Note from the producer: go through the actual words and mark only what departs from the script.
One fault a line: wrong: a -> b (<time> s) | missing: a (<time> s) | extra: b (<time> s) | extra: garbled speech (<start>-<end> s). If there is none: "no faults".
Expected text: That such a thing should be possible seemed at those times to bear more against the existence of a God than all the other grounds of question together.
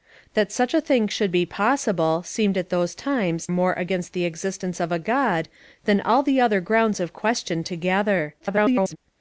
missing: to bear (3.5 s)
extra: garbled speech (8.4-9.0 s)